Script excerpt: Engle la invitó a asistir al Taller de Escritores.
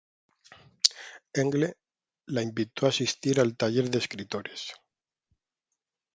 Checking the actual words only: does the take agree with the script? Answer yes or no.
yes